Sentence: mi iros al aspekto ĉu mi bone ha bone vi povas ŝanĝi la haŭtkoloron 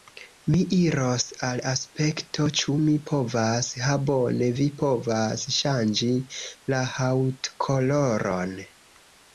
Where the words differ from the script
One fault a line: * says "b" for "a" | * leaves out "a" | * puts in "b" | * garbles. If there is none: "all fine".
* says "povas" for "bone"